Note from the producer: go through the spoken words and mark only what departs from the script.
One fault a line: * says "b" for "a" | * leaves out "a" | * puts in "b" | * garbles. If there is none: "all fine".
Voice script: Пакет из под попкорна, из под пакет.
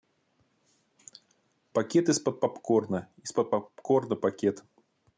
* puts in "попкорна"